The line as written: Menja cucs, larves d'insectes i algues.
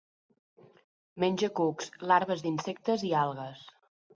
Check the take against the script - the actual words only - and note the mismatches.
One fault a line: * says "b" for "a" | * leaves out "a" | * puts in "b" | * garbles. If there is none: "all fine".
all fine